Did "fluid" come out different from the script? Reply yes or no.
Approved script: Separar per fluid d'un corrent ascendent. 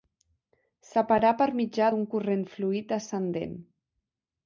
yes